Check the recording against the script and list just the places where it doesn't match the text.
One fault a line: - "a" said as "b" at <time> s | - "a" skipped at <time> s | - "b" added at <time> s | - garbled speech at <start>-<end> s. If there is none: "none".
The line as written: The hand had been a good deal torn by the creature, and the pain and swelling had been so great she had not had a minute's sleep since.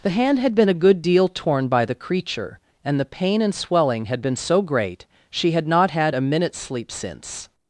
none